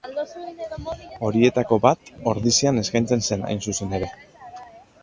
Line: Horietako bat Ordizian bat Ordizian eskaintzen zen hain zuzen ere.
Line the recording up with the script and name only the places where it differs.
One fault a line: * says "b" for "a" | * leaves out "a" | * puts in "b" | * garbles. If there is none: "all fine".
* leaves out "bat Ordizian"